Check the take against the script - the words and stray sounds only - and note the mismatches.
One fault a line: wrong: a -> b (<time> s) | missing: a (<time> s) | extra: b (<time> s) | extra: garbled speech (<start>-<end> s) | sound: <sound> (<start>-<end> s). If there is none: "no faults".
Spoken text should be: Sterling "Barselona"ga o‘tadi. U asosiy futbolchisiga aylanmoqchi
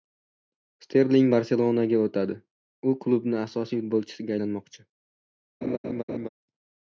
extra: klubning (3.0 s)
sound: laugh (5.6-6.3 s)